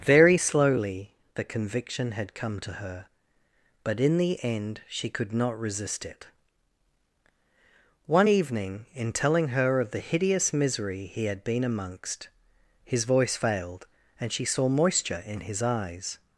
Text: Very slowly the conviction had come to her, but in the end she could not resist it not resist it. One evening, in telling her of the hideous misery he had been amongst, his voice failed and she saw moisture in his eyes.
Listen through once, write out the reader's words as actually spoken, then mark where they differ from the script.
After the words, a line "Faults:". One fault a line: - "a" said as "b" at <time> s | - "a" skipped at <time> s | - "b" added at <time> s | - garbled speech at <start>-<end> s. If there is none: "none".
Very slowly the conviction had come to her, but in the end she could not resist it. One evening, in telling her of the hideous misery he had been amongst, his voice failed and she saw moisture in his eyes.
Faults:
- "not resist it" skipped at 6.3 s